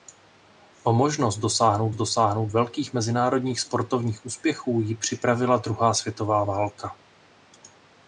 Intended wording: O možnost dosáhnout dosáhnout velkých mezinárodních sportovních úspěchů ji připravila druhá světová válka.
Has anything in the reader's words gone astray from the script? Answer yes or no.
no